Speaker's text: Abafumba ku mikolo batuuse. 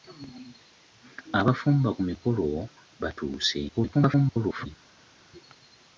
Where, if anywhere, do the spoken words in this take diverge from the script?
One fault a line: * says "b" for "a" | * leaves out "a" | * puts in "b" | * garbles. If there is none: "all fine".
* garbles